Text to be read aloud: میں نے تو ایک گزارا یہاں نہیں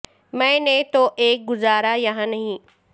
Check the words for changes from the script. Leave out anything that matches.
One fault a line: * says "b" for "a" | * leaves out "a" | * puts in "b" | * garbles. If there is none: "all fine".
all fine